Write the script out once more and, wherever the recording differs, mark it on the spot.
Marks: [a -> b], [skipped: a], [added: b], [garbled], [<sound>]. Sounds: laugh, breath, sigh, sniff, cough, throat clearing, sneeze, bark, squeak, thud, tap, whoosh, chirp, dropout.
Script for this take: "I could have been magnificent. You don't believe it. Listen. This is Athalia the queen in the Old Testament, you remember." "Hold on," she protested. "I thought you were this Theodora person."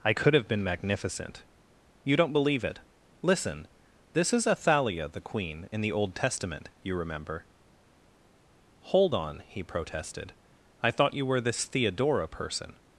"I could have been magnificent. You don't believe it. Listen. This is Athalia the queen in the Old Testament, you remember." "Hold on," [she -> he] protested. "I thought you were this Theodora person."